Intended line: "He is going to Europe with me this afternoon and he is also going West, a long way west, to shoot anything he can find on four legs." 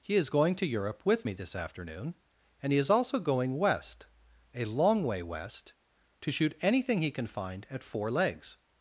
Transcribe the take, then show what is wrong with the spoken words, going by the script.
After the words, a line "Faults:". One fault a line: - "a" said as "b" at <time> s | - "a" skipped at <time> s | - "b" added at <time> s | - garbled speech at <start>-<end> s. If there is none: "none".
"He is going to Europe with me this afternoon and he is also going West, a long way west, to shoot anything he can find at four legs."
Faults:
- "on" said as "at" at 7.7 s